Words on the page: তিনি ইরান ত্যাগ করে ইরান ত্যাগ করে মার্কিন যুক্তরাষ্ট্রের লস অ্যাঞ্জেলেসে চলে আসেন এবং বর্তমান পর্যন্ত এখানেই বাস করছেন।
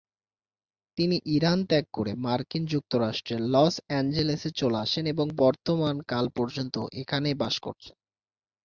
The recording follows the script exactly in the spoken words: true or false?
false